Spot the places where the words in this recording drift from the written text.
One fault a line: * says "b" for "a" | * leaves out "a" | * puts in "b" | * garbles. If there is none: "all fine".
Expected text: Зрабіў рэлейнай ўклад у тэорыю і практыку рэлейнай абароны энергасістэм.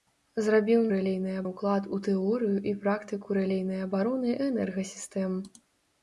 all fine